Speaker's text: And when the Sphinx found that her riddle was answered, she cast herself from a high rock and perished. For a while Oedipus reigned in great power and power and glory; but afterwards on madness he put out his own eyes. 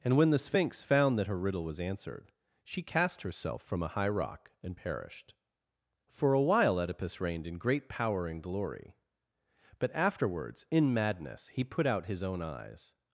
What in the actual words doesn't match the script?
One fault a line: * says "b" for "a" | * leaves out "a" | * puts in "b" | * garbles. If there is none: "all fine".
* leaves out "power and"
* says "in" for "on"